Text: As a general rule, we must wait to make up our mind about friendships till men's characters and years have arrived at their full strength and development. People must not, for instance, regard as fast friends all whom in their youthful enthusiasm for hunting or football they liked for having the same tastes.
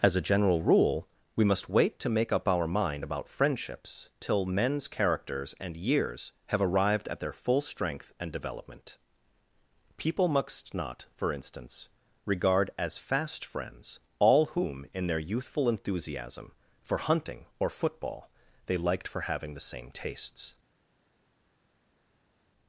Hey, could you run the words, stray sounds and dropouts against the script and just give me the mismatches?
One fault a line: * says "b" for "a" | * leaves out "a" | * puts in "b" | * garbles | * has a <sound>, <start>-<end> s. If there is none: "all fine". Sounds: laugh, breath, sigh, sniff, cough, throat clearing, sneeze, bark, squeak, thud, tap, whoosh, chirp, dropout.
all fine